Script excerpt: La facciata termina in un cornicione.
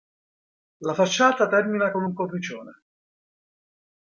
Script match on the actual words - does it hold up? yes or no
no